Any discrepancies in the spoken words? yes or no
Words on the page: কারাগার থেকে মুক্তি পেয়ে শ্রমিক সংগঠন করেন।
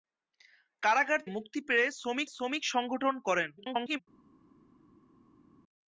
yes